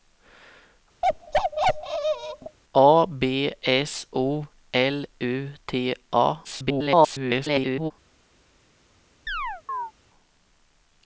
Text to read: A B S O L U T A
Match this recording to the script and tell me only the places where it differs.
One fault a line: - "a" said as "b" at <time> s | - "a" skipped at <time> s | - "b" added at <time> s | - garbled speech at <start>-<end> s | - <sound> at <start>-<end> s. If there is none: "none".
- bark at 1.0-2.6 s
- garbled speech at 6.4-7.9 s
- chirp at 9.3-9.9 s